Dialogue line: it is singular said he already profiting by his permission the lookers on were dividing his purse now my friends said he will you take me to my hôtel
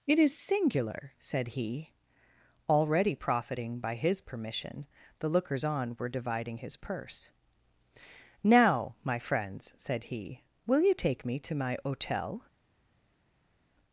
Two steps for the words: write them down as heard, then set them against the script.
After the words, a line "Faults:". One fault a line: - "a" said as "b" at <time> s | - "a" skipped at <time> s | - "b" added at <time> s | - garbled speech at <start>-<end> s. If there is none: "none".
it is singular said he already profiting by his permission the lookers on were dividing his purse now my friends said he will you take me to my hôtel
Faults:
none